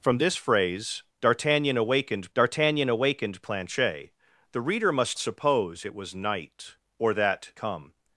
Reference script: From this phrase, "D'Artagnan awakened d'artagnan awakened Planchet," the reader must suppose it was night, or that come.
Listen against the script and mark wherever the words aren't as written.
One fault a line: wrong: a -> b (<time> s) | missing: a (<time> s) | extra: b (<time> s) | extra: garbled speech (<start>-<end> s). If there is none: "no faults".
no faults